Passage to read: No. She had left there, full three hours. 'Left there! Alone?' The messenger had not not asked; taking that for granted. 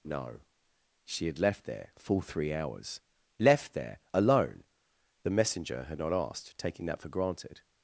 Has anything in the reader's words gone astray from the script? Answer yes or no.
yes